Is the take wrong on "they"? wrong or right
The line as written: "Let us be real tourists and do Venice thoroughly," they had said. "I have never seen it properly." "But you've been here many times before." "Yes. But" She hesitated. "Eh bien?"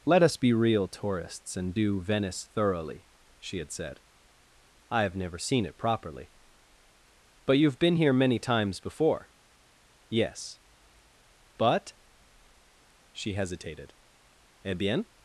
wrong